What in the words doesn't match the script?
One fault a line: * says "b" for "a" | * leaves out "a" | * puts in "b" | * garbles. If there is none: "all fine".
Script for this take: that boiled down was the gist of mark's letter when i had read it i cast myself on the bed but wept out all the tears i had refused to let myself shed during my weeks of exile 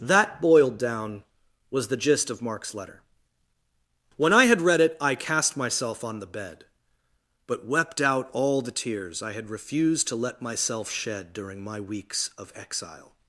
all fine